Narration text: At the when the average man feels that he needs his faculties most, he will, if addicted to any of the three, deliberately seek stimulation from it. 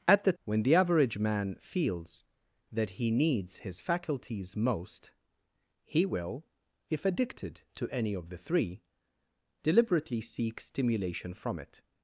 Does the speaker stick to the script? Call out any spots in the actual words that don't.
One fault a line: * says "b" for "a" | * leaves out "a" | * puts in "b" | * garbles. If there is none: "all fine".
all fine